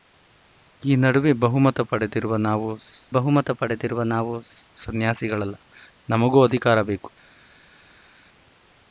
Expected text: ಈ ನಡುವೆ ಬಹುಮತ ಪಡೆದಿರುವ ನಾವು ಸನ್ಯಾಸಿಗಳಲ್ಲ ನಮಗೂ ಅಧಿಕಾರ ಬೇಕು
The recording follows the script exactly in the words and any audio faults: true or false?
false